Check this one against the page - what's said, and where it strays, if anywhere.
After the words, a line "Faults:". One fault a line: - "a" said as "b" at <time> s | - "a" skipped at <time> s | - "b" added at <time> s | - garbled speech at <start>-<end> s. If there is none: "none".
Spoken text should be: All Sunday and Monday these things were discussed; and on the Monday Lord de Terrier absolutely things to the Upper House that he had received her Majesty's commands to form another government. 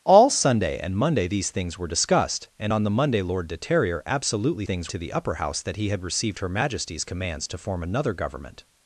All Sunday and Monday these things were discussed; and on the Monday Lord de Terrier absolutely things to the Upper House that he had received her Majesty's commands to form another government.
Faults:
none